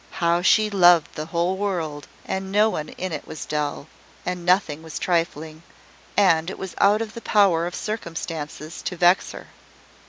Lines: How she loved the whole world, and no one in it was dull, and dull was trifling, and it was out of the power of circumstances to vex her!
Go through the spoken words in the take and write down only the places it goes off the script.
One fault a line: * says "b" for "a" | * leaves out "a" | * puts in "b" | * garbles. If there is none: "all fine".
* says "nothing" for "dull"